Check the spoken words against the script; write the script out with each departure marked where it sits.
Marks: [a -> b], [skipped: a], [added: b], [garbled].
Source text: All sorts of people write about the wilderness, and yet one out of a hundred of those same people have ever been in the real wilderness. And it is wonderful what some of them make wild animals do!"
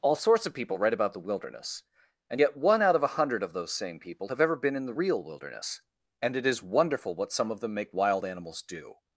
All sorts of people write about the wilderness, and yet one out of a hundred of those same people have ever been in the real wilderness. And it is wonderful what some of them make wild animals do!"